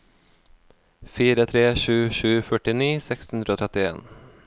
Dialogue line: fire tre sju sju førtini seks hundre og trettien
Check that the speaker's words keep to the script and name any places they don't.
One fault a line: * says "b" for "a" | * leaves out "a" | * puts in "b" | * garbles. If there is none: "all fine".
all fine